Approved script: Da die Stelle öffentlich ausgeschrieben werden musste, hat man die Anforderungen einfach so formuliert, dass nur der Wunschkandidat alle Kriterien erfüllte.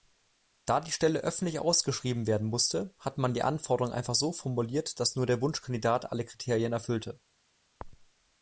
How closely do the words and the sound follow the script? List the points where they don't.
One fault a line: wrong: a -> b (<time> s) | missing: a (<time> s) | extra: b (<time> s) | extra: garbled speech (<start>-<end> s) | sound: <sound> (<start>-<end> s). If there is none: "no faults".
no faults